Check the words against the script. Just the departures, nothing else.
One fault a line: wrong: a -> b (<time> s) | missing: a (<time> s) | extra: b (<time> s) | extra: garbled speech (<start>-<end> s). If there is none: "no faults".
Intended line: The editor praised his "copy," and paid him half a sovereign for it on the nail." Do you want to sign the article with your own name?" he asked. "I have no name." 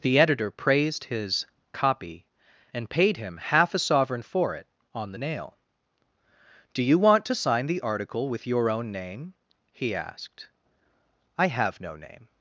no faults